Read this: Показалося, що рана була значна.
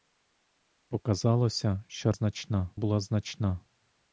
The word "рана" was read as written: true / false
false